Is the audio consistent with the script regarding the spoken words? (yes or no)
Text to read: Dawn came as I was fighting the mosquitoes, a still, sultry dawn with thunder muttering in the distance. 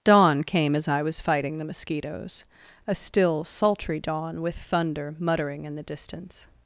yes